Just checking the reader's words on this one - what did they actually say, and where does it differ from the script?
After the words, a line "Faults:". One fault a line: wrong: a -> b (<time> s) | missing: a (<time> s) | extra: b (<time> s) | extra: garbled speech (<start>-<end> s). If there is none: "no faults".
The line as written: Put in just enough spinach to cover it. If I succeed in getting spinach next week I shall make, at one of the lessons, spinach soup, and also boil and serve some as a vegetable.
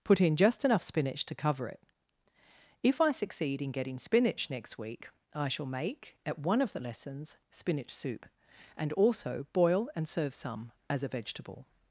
Put in just enough spinach to cover it. If I succeed in getting spinach next week I shall make, at one of the lessons, spinach soup, and also boil and serve some as a vegetable.
Faults:
no faults